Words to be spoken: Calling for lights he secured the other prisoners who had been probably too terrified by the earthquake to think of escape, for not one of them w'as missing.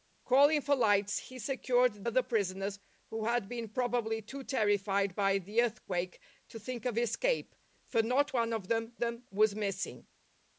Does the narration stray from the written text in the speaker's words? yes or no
yes